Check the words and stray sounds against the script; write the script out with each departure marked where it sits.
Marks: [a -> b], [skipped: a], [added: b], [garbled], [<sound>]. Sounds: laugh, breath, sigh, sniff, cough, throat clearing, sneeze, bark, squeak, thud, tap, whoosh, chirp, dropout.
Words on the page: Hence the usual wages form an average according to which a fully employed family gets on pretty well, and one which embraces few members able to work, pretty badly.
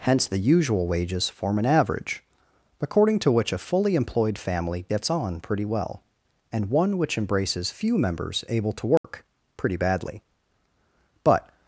Hence the usual wages form an average according to which a fully employed family gets on pretty well, and one which embraces few members able to work, [dropout] pretty badly. [added: But]